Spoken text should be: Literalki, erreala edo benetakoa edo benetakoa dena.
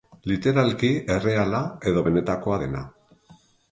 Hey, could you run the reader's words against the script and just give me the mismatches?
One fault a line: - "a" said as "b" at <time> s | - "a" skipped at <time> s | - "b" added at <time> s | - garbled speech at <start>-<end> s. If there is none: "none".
- "edo benetakoa" skipped at 2.6 s